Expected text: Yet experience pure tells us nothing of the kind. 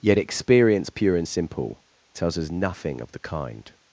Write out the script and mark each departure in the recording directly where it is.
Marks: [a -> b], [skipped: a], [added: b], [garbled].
Yet experience pure [added: and simple] tells us nothing of the kind.